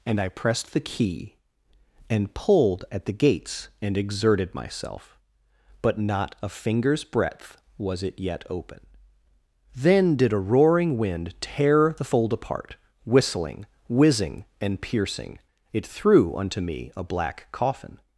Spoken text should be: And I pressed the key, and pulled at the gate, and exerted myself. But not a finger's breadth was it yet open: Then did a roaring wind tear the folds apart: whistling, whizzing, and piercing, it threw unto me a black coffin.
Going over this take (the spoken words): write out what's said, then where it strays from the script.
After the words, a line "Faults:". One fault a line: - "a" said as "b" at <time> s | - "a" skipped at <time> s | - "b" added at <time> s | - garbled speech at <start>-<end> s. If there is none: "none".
And I pressed the key, and pulled at the gates, and exerted myself. But not a finger's breadth was it yet open: Then did a roaring wind tear the fold apart: whistling, whizzing, and piercing, it threw unto me a black coffin.
Faults:
- "gate" said as "gates" at 3.1 s
- "folds" said as "fold" at 12.0 s